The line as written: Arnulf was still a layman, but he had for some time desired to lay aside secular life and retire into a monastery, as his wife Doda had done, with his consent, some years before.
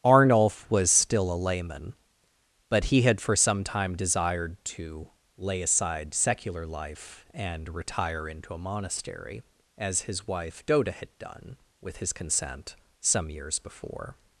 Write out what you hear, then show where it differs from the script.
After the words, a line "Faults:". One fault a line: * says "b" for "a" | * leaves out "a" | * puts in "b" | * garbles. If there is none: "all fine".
Arnulf was still a layman, but he had for some time desired to lay aside secular life and retire into a monastery, as his wife Doda had done, with his consent, some years before.
Faults:
all fine